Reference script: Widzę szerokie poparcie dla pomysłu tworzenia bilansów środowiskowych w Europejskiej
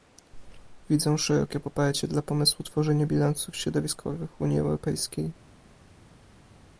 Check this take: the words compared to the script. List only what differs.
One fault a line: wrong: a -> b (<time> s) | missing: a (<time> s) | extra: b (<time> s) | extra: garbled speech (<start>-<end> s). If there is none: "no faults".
extra: Unii (4.4 s)